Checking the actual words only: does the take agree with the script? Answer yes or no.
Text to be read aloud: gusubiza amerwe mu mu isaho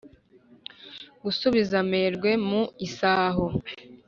no